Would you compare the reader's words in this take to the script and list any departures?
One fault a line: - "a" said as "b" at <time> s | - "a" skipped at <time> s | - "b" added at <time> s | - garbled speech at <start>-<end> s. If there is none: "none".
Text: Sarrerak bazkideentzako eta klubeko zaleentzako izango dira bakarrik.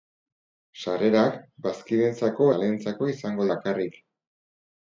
- "eta klubeko" skipped at 2.5 s
- "dira" skipped at 3.5 s